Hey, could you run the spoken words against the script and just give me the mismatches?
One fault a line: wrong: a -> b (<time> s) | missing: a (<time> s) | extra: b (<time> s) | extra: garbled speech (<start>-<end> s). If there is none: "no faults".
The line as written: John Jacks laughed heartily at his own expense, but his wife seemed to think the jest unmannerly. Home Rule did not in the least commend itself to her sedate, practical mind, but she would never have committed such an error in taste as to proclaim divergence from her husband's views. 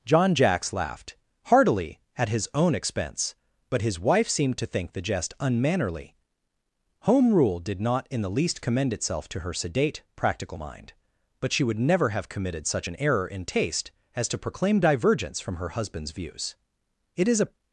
extra: It is a (17.2 s)